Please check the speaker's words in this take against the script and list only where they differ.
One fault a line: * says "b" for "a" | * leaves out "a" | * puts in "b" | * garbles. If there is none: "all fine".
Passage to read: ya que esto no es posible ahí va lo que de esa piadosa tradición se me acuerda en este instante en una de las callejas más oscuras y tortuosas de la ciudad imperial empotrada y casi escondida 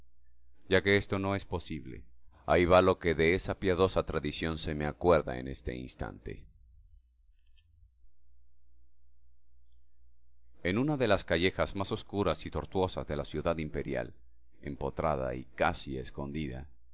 all fine